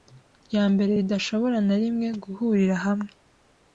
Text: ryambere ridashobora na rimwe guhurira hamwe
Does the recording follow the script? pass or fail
pass